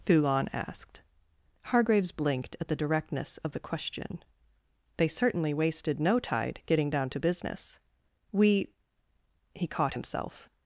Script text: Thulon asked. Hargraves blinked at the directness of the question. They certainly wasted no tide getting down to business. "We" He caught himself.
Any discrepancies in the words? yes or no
no